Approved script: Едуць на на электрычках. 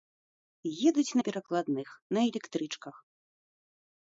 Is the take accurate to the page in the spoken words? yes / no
no